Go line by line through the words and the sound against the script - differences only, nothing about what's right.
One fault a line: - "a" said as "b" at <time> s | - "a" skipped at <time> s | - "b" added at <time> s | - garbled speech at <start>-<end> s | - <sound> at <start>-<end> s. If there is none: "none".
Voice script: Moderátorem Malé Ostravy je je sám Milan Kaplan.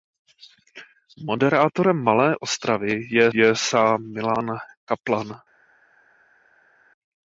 none